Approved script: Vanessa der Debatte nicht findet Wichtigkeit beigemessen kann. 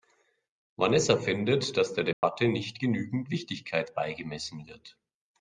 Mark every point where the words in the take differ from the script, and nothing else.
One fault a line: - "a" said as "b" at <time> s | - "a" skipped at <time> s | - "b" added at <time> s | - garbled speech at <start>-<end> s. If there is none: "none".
- "findet dass" added at 1.2 s
- "findet" said as "genügend" at 2.8 s
- "kann" said as "wird" at 4.7 s